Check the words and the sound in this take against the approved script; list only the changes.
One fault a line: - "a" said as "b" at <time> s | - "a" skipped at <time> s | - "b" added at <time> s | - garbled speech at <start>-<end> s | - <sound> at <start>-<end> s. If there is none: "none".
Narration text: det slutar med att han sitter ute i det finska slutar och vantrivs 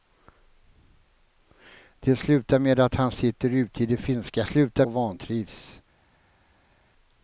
none